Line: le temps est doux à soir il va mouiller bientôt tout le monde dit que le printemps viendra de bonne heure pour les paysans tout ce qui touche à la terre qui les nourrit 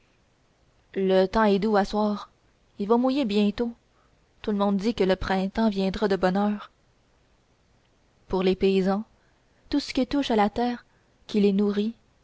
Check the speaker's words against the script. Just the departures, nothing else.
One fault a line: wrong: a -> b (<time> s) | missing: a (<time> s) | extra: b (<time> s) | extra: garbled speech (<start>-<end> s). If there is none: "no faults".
no faults